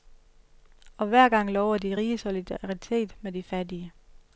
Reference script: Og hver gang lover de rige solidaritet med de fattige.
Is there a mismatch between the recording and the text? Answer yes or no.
no